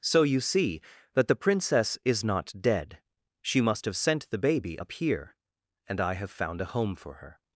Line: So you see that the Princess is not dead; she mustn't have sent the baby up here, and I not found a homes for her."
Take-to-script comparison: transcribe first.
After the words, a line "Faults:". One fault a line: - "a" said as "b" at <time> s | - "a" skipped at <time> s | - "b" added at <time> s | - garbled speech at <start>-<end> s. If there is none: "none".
So you see that the Princess is not dead; she must have sent the baby up here, and I have found a home for her."
Faults:
- "mustn't" said as "must" at 3.6 s
- "not" said as "have" at 6.1 s
- "homes" said as "home" at 6.7 s